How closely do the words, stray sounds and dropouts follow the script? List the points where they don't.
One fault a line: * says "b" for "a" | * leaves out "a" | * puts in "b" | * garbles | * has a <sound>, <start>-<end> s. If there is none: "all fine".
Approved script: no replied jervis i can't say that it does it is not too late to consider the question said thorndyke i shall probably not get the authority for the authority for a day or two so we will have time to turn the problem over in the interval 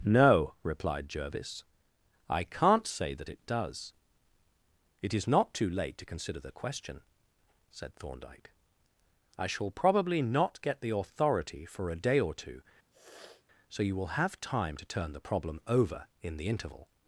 * leaves out "the authority for"
* has a sniff, 12.9-13.4 s
* says "you" for "we"